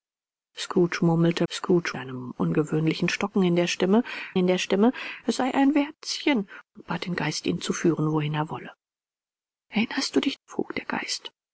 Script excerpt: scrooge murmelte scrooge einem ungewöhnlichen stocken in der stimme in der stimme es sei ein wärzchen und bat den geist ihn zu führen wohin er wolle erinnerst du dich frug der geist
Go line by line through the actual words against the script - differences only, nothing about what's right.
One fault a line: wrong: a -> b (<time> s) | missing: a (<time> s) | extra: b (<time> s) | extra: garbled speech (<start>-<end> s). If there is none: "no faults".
no faults